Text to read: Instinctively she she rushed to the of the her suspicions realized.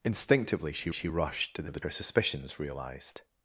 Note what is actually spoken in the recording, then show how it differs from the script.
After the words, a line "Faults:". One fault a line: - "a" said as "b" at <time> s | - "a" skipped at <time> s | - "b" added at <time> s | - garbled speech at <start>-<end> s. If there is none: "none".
Instinctively she she rushed to the of the her suspicions realized.
Faults:
none